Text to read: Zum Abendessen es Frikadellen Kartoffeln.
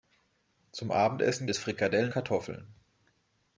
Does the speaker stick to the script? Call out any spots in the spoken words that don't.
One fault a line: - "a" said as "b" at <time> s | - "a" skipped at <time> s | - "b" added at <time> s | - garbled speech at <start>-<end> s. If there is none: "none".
none